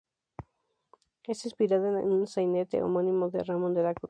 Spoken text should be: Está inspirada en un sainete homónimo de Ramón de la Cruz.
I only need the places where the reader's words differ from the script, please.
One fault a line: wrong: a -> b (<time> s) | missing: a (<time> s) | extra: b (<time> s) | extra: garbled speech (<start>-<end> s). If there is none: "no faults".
no faults